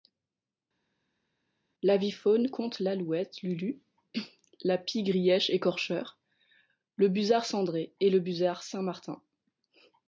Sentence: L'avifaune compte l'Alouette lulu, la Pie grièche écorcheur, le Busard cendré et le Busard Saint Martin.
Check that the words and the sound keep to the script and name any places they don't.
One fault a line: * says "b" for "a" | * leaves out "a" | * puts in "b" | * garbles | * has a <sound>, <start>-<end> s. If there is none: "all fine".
all fine